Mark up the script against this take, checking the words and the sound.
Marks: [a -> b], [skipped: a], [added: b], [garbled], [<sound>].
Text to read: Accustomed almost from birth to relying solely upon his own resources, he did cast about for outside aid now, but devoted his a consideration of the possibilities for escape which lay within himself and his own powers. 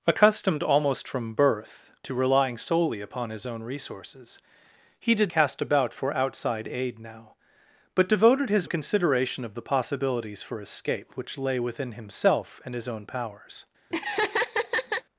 Accustomed almost from birth to relying solely upon his own resources, he did cast about for outside aid now, but devoted his a consideration of the possibilities for escape which lay within himself and his own powers. [laugh]